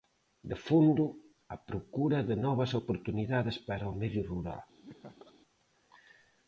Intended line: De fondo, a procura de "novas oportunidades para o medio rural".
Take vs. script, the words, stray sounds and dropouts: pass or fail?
fail